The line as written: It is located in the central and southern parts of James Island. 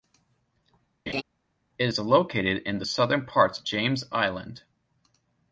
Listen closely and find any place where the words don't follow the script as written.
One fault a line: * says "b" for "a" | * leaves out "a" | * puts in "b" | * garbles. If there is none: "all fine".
* leaves out "central and"
* leaves out "of"